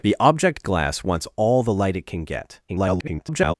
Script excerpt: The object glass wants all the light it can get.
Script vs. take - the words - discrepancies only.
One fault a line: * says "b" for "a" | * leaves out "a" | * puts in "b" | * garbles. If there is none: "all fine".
* garbles